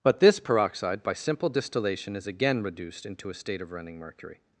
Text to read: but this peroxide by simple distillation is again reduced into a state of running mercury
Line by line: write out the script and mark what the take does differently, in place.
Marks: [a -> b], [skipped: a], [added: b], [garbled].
but this peroxide by simple distillation is again reduced into a state of running mercury